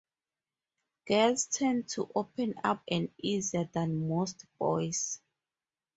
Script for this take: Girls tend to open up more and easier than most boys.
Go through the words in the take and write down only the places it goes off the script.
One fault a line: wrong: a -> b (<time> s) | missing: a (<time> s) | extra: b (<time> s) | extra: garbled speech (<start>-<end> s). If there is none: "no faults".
missing: more (2.9 s)